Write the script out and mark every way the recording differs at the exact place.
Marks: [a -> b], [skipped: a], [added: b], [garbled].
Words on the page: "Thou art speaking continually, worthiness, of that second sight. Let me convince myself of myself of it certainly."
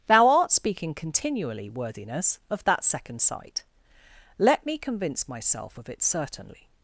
"Thou art speaking continually, worthiness, of that second sight. Let me convince myself of [skipped: myself of] it certainly."